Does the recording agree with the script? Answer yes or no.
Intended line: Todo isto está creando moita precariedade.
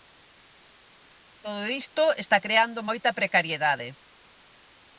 yes